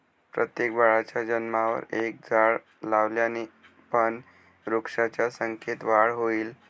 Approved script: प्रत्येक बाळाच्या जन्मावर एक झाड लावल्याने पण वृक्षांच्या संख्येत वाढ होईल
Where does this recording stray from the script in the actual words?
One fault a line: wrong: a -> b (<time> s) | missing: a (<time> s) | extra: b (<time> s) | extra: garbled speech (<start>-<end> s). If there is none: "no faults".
no faults